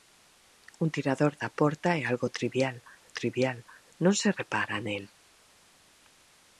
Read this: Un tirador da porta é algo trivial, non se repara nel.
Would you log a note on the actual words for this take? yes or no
yes